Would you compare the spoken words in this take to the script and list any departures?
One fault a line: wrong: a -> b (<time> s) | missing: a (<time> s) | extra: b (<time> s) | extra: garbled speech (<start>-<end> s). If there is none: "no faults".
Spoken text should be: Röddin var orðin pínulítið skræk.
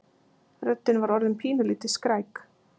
no faults